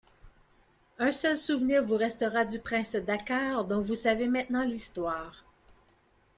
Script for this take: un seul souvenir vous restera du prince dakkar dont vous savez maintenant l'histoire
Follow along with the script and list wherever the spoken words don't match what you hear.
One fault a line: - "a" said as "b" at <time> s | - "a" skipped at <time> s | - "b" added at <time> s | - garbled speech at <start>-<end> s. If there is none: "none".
none